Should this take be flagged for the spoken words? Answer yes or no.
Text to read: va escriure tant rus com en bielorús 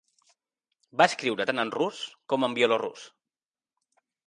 yes